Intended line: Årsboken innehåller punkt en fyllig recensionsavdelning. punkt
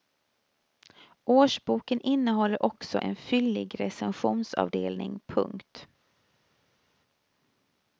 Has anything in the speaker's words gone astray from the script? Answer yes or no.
yes